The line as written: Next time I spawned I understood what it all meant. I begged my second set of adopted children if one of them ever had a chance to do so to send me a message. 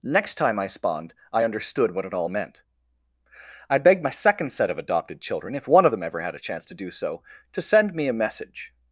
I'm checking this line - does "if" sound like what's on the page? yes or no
yes